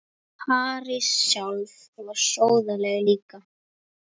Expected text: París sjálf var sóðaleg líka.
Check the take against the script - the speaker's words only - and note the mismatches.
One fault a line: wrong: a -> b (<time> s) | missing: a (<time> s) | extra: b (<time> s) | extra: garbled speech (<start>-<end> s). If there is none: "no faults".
no faults